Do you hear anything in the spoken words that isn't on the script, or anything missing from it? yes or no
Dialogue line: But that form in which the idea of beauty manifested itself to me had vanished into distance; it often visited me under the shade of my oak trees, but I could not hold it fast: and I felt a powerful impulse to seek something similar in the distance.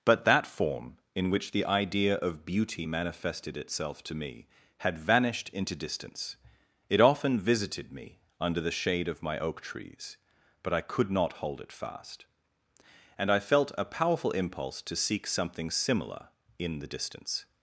no